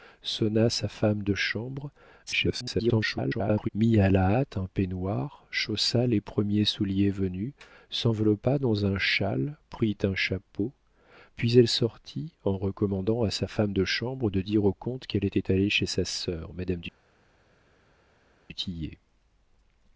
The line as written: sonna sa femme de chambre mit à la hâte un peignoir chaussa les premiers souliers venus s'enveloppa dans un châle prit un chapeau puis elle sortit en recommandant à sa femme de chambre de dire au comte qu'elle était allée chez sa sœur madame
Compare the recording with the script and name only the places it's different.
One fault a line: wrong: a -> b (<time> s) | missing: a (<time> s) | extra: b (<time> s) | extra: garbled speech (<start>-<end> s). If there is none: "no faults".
extra: garbled speech (2.3-3.7 s)